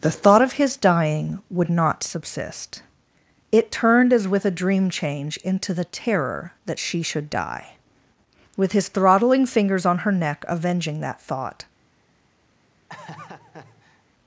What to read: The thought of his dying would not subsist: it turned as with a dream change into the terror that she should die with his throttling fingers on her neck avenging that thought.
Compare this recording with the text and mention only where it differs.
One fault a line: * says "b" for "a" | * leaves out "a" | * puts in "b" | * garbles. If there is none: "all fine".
all fine